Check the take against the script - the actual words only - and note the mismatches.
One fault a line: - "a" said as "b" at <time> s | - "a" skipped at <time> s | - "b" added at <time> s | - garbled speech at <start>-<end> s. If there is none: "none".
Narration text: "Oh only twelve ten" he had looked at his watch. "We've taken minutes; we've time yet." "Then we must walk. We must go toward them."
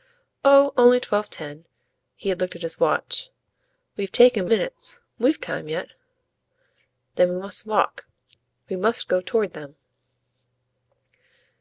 none